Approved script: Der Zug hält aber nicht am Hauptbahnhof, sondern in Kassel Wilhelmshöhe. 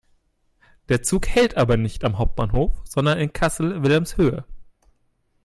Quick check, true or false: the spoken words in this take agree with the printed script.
true